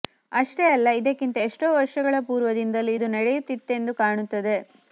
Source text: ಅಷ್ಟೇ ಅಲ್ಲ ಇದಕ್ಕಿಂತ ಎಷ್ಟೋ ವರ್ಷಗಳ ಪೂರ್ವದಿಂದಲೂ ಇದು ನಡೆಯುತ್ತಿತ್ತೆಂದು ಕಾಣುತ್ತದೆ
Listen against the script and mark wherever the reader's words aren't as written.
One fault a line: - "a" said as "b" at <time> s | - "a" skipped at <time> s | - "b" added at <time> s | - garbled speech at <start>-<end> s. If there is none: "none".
none